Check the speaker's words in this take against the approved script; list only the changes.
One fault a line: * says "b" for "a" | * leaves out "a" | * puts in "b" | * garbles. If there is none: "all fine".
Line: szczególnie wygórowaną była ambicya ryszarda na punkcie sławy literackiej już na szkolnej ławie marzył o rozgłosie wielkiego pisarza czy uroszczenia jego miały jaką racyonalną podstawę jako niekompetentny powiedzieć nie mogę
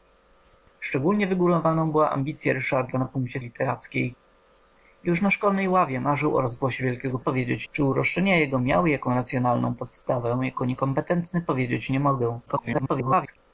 * leaves out "sławy"
* says "powiedzieć" for "pisarza"
* garbles